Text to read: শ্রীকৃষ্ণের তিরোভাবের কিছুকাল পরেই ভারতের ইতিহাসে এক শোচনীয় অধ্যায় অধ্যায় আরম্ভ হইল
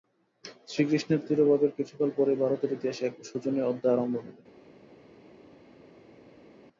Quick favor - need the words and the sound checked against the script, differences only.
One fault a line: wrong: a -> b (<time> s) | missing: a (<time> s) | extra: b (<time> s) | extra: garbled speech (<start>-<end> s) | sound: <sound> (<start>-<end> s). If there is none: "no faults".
missing: অধ্যায় (3.9 s)